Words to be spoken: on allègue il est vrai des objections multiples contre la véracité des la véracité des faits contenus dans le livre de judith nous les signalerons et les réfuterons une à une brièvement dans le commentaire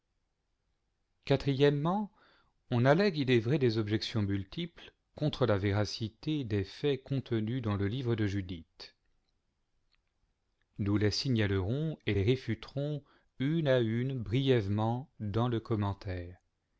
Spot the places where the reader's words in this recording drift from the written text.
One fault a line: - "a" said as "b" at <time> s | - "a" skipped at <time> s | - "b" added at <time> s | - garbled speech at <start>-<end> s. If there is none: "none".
- "la véracité des" skipped at 6.6 s